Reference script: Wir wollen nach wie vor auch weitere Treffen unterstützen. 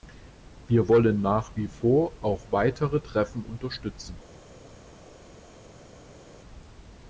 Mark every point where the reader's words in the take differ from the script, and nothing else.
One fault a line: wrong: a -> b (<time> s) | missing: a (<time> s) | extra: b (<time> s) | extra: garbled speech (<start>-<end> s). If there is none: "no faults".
no faults